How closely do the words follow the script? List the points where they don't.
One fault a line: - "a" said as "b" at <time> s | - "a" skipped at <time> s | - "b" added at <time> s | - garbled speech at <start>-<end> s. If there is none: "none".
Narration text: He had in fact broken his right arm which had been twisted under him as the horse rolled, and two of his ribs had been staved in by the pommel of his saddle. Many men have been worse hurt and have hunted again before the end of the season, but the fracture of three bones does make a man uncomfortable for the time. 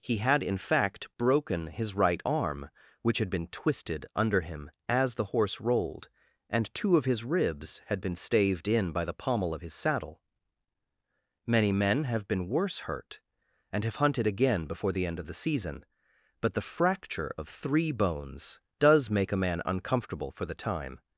none